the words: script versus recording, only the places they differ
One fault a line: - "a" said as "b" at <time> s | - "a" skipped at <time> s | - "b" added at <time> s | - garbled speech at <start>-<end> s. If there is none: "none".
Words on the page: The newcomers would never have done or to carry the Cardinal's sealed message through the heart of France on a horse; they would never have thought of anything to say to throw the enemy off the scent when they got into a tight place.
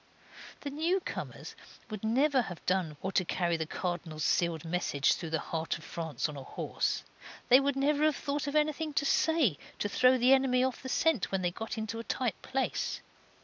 none